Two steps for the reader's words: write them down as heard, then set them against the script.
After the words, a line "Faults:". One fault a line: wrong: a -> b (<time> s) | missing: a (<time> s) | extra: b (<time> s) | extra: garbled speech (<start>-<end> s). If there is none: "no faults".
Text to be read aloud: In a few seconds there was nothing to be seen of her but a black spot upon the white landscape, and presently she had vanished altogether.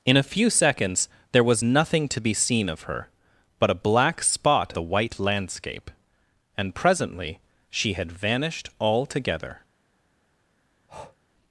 In a few seconds there was nothing to be seen of her but a black spot the white landscape, and presently she had vanished altogether.
Faults:
missing: upon (4.7 s)